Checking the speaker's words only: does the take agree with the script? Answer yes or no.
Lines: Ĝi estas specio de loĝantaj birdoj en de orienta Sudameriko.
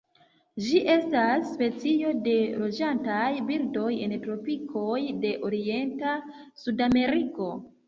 no